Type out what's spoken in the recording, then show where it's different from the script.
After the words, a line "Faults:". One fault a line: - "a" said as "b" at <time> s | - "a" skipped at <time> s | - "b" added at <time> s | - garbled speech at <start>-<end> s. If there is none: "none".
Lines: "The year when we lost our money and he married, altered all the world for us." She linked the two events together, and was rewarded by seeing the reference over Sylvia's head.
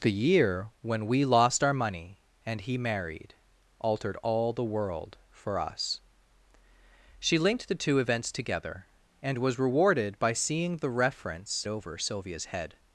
"The year when we lost our money and he married, altered all the world for us." She linked the two events together, and was rewarded by seeing the reference over Sylvia's head.
Faults:
none